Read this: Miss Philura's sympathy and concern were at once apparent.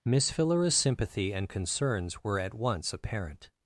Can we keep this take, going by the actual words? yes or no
no